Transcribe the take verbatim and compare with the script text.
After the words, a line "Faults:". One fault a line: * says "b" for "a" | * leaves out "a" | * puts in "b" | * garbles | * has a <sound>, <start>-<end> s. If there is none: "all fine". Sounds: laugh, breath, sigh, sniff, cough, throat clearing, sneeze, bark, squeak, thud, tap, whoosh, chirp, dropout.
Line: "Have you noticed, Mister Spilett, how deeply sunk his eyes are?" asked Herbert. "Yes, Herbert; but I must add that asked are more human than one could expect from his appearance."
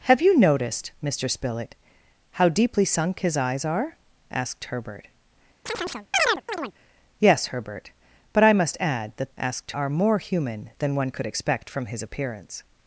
"Have you noticed, Mister Spilett, how deeply sunk his eyes are?" asked Herbert. "Yes, Herbert; but I must add that asked are more human than one could expect from his appearance."
Faults:
* has a chirp, 5.7-6.7 s